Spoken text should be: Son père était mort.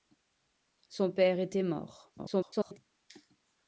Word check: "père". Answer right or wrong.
right